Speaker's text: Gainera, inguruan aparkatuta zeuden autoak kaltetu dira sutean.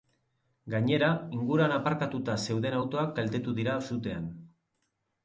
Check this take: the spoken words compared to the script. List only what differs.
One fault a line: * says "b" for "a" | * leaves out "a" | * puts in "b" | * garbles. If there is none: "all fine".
all fine